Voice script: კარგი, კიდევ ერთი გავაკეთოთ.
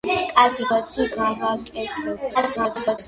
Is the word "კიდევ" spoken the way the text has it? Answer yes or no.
no